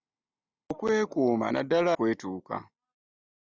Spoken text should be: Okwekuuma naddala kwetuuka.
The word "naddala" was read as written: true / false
true